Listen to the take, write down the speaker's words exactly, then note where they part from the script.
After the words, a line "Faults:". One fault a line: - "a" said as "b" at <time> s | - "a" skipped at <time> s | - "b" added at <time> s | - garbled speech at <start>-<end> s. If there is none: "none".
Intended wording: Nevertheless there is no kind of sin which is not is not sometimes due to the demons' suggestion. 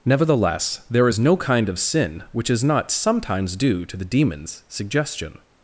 Nevertheless there is no kind of sin which is not sometimes due to the demons' suggestion.
Faults:
- "is not" skipped at 2.9 s